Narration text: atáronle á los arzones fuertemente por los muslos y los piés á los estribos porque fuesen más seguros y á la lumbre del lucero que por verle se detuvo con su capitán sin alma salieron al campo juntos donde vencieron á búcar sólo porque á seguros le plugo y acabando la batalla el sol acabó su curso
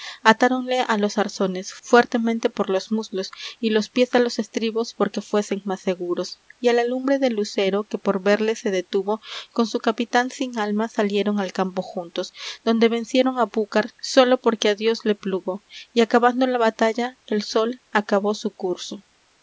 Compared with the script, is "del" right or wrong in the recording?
right